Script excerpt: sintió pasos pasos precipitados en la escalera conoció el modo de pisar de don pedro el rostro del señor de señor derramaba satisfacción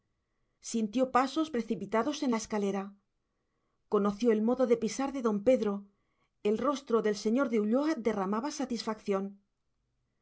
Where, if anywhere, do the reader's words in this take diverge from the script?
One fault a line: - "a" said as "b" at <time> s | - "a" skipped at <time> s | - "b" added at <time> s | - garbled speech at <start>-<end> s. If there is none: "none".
- "pasos" skipped at 1.5 s
- "señor" said as "ulloa" at 7.6 s